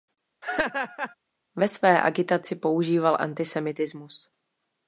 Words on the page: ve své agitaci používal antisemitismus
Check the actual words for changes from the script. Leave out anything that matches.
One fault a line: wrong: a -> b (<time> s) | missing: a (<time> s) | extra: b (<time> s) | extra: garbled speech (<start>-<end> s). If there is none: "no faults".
no faults